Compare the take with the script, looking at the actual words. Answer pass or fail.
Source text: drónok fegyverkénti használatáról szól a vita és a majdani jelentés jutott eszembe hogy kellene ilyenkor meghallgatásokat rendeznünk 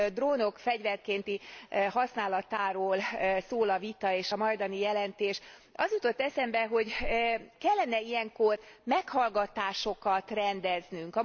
fail